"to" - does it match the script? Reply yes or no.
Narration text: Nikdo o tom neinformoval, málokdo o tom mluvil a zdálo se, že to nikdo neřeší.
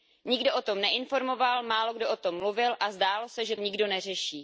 no